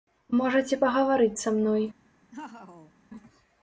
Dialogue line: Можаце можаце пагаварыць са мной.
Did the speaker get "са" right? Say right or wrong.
right